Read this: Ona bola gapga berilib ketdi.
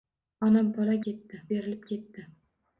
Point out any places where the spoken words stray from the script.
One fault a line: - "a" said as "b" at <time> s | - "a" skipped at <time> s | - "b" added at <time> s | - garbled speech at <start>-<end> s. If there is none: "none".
- "gapga" said as "ketdi" at 1.1 s